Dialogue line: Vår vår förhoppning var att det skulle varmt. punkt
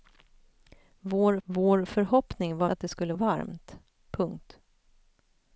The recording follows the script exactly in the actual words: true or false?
true